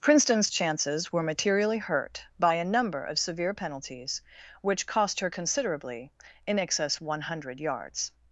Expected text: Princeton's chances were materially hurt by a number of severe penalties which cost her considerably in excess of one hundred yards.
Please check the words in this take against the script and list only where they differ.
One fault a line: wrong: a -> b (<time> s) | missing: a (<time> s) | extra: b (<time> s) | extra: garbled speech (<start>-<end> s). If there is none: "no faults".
missing: of (7.0 s)